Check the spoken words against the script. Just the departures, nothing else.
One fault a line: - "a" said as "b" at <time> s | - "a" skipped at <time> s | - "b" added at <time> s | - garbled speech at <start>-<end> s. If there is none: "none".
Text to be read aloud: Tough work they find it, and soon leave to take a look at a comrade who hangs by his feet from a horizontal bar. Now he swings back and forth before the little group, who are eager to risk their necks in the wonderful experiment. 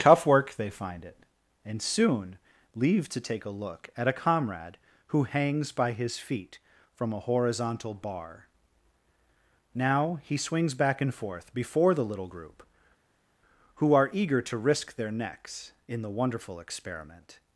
none